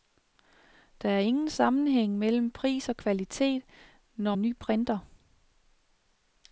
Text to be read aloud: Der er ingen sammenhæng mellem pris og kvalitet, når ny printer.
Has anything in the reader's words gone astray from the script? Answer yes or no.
no